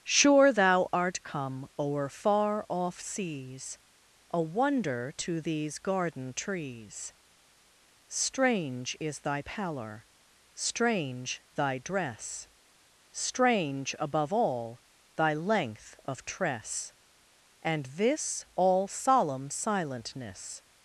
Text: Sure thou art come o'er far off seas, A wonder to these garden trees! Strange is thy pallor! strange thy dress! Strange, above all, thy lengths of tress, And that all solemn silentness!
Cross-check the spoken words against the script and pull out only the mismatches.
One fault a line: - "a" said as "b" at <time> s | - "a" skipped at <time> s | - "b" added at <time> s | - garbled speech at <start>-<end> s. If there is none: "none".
- "lengths" said as "length" at 15.3 s
- "that" said as "this" at 17.9 s